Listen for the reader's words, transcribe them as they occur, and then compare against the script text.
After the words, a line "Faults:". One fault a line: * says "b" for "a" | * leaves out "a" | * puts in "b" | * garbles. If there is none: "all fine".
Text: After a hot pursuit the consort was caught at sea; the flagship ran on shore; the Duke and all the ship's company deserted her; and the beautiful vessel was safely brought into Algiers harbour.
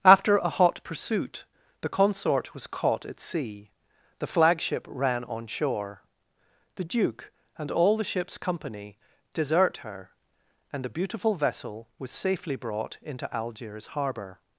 After a hot pursuit the consort was caught at sea; the flagship ran on shore; the Duke and all the ship's company desert her; and the beautiful vessel was safely brought into Algiers harbour.
Faults:
* says "desert" for "deserted"